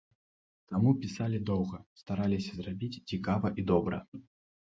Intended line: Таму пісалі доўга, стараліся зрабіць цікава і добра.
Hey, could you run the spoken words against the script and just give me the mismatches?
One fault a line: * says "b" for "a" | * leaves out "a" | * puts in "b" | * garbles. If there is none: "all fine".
all fine